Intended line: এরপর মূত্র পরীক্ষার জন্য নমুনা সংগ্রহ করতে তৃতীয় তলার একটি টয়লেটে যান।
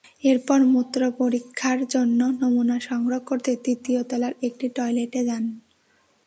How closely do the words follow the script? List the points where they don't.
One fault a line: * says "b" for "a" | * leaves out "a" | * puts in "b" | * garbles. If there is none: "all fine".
all fine